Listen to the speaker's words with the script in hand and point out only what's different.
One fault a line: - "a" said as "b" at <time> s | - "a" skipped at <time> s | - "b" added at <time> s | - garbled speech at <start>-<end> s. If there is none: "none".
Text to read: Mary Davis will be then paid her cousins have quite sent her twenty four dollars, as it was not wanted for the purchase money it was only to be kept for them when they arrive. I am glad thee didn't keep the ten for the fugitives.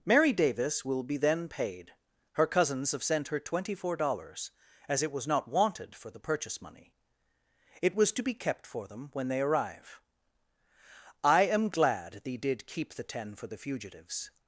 - "quite" skipped at 3.0 s
- "only" skipped at 8.1 s
- "didn't" said as "did" at 12.4 s